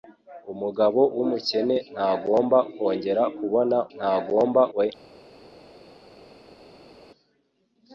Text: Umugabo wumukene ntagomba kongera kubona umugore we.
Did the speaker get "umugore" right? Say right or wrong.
wrong